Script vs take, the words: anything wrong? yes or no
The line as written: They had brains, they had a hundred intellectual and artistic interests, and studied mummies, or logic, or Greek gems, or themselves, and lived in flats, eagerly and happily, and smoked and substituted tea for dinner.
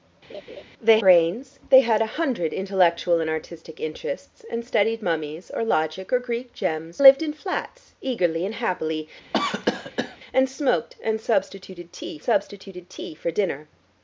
yes